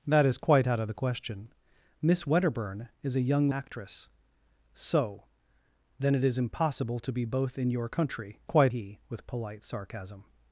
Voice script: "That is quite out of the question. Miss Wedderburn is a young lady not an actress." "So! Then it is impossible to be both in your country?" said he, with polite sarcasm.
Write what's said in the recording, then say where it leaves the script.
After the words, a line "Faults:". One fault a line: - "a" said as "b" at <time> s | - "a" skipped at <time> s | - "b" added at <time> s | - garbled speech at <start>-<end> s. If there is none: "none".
"That is quite out of the question. Miss Wedderburn is a young actress." "So! Then it is impossible to be both in your country?" quite he, with polite sarcasm.
Faults:
- "lady not an" skipped at 3.5 s
- "said" said as "quite" at 8.4 s